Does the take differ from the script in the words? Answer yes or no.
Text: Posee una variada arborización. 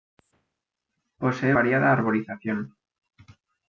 yes